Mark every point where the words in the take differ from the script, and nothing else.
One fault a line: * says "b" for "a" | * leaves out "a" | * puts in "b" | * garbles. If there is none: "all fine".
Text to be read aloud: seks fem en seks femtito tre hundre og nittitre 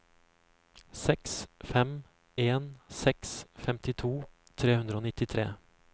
all fine